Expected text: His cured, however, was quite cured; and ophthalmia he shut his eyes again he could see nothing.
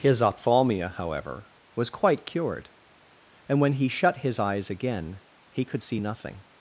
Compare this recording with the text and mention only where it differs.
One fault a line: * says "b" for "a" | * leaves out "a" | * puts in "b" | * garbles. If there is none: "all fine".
* says "ophthalmia" for "cured"
* says "when" for "ophthalmia"